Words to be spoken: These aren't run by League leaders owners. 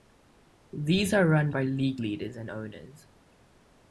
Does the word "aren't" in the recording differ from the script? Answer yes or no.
yes